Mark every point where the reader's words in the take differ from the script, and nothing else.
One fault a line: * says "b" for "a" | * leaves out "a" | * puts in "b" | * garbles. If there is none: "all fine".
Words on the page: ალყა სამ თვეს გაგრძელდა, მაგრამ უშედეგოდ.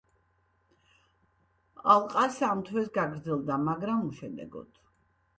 all fine